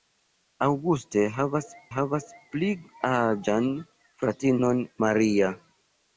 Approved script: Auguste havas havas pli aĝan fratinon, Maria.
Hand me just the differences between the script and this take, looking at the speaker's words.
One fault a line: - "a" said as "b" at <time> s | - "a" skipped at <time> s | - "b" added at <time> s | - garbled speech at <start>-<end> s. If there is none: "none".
none